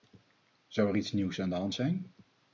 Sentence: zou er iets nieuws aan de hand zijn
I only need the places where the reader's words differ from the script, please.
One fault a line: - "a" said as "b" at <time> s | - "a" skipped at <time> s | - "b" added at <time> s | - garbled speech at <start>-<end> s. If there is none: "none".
none